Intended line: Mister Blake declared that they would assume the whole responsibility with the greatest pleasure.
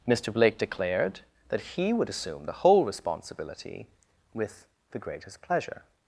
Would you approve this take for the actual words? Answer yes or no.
no